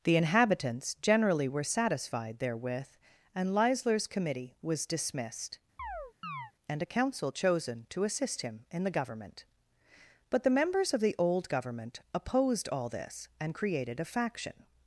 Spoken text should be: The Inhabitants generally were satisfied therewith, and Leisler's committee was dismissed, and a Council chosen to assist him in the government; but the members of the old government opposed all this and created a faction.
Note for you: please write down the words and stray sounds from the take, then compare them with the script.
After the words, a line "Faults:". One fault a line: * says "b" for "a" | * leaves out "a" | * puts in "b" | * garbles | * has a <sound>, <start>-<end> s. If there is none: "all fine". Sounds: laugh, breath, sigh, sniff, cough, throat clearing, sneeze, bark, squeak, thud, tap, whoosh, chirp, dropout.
The Inhabitants generally were satisfied therewith, and Leisler's committee was dismissed, and a Council chosen to assist him in the government; but the members of the old government opposed all this and created a faction.
Faults:
* has a chirp, 5.8-6.5 s